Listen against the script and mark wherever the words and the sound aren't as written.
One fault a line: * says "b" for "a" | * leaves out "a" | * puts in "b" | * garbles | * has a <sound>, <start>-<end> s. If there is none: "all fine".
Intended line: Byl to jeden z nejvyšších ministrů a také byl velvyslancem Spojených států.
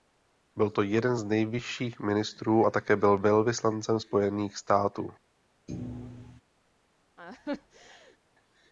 * has a thud, 5.7-6.4 s
* has a laugh, 7.2-8.2 s